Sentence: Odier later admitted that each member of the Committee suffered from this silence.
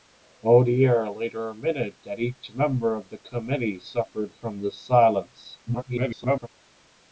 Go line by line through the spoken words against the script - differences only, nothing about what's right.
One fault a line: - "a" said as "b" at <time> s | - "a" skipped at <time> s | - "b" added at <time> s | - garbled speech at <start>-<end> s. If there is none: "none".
- garbled speech at 5.7-6.5 s